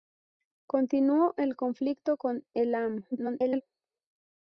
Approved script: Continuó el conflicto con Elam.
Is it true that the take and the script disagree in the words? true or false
true